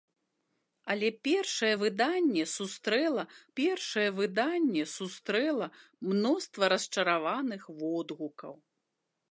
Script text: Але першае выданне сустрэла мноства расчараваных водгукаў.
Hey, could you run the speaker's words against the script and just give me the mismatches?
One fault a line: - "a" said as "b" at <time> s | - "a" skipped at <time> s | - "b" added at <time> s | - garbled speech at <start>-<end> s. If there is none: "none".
- "першае выданне сустрэла" added at 3.6 s